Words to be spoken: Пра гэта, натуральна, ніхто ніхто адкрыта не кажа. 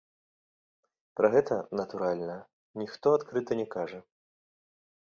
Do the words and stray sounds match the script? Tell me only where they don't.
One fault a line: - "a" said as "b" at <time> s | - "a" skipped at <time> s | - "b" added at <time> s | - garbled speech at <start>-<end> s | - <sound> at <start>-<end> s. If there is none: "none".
- "ніхто" skipped at 3.1 s